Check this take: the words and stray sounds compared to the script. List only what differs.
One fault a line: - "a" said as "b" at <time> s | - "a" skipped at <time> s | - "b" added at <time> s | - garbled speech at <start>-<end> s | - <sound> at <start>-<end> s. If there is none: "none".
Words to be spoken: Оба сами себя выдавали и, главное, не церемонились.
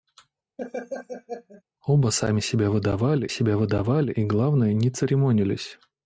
- laugh at 0.6-1.6 s
- "себя выдавали" added at 3.3 s